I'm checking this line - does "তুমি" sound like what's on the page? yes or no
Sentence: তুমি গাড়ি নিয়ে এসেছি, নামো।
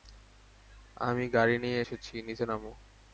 no